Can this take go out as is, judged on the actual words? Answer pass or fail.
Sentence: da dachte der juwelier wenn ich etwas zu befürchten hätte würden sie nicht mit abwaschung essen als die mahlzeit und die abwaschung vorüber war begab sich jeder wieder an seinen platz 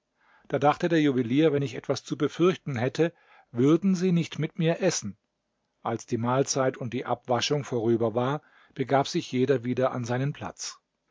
fail